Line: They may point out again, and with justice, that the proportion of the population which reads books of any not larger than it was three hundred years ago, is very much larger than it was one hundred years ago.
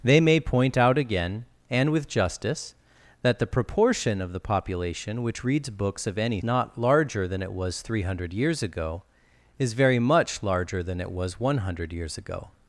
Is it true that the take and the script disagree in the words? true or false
false